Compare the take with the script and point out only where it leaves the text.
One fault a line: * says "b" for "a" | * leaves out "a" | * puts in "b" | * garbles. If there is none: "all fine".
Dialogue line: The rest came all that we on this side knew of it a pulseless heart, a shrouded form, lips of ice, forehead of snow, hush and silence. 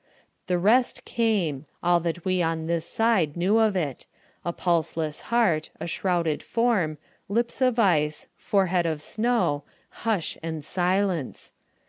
all fine